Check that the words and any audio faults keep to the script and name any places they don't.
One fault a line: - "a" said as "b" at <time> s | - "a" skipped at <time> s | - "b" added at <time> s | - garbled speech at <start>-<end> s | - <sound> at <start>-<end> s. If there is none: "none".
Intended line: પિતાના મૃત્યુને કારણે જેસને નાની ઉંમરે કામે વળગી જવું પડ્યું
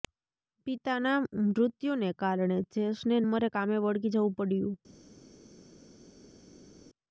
- "નાની" skipped at 3.2 s